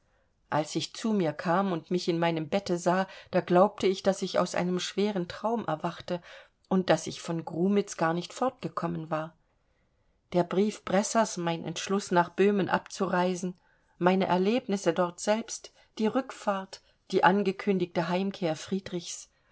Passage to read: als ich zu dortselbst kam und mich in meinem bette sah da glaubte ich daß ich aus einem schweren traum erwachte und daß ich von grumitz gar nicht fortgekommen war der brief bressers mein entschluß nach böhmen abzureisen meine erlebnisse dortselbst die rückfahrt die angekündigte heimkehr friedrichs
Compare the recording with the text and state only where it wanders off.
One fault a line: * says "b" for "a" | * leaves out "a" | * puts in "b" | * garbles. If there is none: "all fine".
* says "mir" for "dortselbst"